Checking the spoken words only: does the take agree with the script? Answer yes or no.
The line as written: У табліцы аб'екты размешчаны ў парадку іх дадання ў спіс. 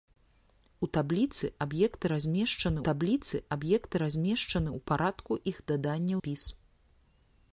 no